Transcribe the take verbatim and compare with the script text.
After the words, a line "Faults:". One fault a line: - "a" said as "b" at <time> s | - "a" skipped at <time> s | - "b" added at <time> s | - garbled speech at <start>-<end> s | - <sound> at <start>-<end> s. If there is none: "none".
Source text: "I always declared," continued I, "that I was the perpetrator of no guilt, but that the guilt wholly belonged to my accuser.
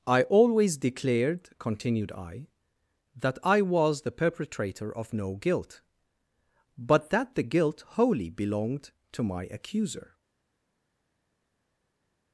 "I always declared," continued I, "that I was the perpetrator of no guilt, but that the guilt wholly belonged to my accuser.
Faults:
none